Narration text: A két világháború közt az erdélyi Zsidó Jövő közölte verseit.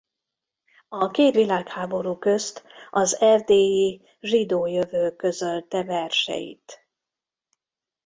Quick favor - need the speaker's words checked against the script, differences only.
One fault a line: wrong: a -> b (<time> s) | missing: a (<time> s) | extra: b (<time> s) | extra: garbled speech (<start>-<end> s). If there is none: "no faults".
no faults